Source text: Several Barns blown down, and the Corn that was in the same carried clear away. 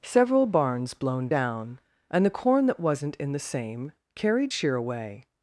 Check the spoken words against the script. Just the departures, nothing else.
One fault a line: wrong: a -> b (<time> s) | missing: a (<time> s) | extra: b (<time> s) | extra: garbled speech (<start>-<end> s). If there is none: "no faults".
wrong: was -> wasn't (2.8 s)
wrong: clear -> sheer (4.5 s)